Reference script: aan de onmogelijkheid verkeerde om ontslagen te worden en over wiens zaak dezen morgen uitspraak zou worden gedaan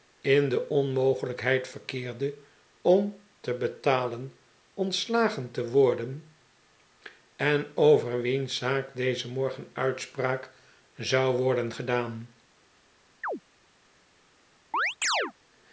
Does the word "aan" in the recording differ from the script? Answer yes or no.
yes